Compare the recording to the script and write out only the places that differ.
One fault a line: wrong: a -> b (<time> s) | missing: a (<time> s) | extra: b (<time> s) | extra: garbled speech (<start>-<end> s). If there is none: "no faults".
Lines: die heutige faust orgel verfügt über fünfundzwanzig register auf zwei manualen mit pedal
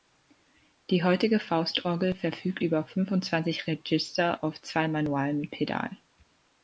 no faults